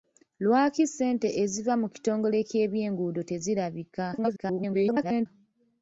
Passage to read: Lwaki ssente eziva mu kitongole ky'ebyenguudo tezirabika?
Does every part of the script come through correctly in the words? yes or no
no